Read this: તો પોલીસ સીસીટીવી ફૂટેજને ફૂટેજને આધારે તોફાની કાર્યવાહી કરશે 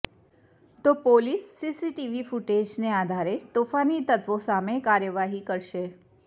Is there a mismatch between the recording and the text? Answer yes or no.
yes